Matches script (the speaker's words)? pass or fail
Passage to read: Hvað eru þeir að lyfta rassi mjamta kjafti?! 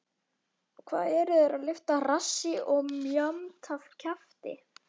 fail